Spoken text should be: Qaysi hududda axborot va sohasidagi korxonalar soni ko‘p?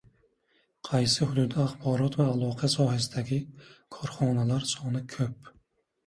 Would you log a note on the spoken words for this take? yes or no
yes